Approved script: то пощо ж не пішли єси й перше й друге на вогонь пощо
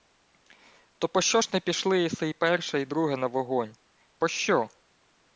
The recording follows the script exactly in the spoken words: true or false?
true